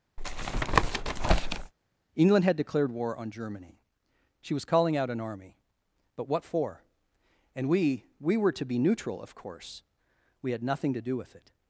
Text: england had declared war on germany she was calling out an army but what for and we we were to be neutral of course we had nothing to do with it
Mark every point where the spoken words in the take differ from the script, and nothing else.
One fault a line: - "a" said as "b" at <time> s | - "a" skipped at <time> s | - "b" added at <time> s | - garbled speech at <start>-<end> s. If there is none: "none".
none